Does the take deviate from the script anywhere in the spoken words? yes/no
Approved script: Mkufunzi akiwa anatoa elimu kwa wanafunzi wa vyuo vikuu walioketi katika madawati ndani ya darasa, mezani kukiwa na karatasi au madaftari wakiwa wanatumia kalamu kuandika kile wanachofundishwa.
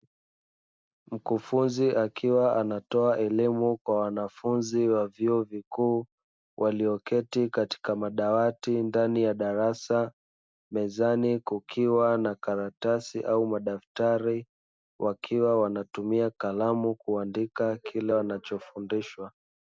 no